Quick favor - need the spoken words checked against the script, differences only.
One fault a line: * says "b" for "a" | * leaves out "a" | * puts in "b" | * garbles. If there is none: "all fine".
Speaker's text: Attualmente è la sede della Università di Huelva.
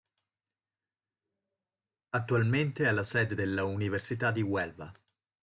all fine